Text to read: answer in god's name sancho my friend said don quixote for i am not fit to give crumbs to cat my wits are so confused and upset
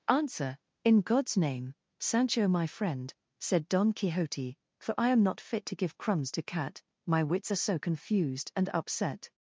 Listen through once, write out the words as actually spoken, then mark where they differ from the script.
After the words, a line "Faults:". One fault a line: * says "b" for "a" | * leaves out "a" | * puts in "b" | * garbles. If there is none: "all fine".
answer in god's name sancho my friend said don quixote for i am not fit to give crumbs to cat my wits are so confused and upset
Faults:
all fine